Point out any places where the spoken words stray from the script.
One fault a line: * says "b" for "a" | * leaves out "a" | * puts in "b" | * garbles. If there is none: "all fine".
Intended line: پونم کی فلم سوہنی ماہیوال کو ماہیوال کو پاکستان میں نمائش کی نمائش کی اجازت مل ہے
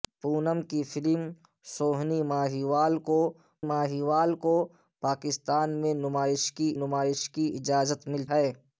all fine